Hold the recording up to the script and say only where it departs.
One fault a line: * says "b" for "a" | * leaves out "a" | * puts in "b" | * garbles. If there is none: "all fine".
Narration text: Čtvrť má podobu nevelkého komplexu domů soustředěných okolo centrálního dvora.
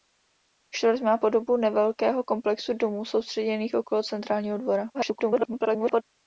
* garbles